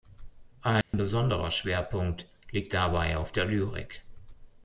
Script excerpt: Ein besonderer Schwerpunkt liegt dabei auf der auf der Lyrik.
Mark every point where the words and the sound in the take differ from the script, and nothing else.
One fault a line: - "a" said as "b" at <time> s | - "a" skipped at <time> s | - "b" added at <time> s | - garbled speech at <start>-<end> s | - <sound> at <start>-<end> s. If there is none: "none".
- dropout at 0.8-0.9 s
- "auf der" skipped at 3.5 s